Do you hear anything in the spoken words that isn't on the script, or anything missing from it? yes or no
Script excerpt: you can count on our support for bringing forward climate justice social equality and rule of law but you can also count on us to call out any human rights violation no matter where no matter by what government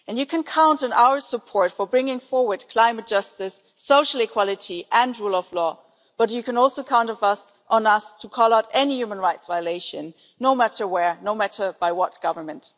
no